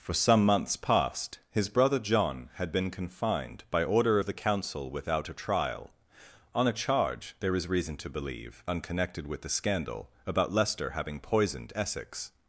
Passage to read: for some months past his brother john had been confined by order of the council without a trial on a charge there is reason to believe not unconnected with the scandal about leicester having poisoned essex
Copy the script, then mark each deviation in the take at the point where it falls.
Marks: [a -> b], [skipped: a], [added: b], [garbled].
for some months past his brother john had been confined by order of the council without a trial on a charge there is reason to believe [skipped: not] unconnected with the scandal about leicester having poisoned essex